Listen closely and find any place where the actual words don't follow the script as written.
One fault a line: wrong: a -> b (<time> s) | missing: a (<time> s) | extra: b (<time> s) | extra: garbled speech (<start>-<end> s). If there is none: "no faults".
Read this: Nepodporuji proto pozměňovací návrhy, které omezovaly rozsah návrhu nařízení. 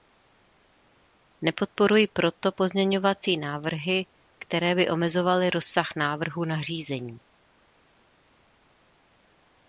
extra: by (4.8 s)